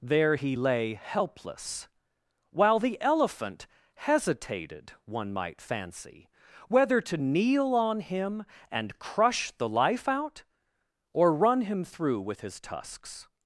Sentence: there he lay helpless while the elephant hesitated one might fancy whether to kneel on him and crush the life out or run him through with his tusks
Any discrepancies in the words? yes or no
no